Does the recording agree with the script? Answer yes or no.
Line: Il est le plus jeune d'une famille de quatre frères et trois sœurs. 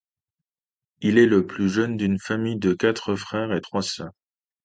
yes